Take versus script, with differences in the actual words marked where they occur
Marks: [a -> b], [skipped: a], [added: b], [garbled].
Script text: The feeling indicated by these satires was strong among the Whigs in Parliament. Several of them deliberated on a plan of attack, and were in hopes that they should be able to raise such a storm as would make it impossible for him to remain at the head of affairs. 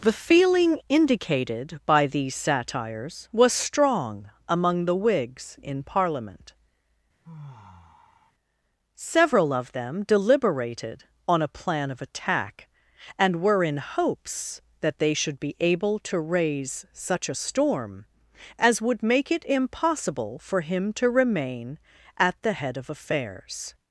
The feeling indicated by these satires was strong among the Whigs in Parliament. Several of them deliberated on a plan of attack, and were in hopes that they should be able to raise such a storm as would make it impossible for him to remain at the head of affairs.